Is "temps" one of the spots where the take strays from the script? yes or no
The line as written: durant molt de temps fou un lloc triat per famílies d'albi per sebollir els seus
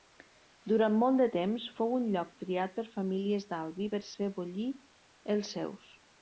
no